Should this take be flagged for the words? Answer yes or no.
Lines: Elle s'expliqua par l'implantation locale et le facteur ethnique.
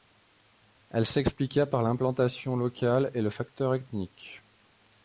no